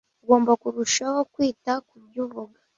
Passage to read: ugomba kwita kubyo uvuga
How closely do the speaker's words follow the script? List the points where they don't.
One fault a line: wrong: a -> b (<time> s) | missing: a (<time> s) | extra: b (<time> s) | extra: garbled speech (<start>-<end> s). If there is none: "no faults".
extra: kurushaho (0.6 s)